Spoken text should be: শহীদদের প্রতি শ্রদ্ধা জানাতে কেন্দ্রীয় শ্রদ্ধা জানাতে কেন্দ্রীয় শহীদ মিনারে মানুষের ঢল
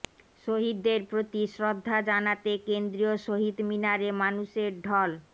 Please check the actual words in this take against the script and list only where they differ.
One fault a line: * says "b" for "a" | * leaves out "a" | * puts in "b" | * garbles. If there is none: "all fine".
* leaves out "শ্রদ্ধা জানাতে কেন্দ্রীয়"